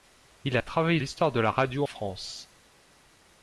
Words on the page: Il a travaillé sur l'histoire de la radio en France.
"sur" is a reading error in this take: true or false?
true